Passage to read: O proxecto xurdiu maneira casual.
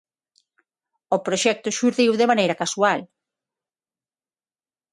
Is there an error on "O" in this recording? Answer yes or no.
no